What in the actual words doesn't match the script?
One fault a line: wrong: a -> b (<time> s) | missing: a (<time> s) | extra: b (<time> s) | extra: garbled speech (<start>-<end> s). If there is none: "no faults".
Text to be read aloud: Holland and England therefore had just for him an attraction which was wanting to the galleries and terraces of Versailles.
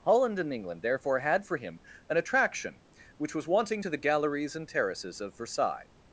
missing: just (1.4 s)